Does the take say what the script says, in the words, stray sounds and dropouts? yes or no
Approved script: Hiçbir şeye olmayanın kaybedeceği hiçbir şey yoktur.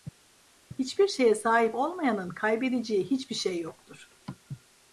no